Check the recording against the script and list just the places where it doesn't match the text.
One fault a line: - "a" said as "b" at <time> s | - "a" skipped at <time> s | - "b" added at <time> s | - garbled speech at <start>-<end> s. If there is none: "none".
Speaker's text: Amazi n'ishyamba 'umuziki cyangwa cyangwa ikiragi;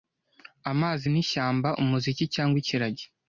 - "cyangwa" skipped at 2.6 s